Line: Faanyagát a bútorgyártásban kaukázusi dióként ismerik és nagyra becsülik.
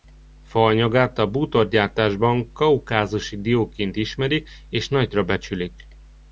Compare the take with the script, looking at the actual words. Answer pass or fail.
pass